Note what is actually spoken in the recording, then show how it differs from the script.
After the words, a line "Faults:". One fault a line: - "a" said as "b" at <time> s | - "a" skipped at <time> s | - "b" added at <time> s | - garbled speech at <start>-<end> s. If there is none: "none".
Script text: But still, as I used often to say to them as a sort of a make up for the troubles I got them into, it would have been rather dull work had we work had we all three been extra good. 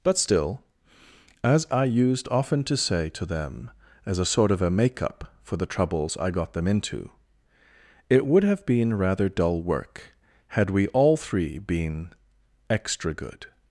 But still, as I used often to say to them as a sort of a make up for the troubles I got them into, it would have been rather dull work had we all three been extra good.
Faults:
- "work had we" skipped at 10.9 s